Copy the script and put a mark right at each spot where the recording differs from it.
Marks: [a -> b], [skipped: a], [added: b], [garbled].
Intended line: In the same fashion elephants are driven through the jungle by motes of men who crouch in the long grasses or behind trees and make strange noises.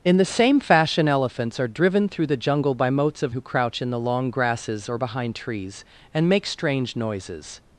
In the same fashion elephants are driven through the jungle by motes of [skipped: men] who crouch in the long grasses or behind trees and make strange noises.